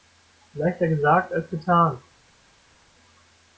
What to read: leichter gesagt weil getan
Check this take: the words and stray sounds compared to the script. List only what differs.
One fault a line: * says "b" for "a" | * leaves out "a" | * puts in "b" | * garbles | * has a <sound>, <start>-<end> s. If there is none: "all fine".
* says "als" for "weil"